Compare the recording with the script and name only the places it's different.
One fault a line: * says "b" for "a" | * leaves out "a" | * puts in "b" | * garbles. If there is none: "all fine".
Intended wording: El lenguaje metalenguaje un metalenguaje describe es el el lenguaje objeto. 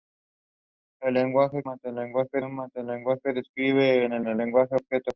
all fine